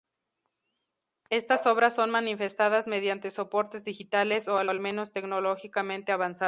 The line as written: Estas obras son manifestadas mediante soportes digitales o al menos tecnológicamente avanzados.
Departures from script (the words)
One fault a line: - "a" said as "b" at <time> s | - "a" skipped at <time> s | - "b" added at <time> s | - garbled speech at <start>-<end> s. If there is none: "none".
- "al" added at 4.7 s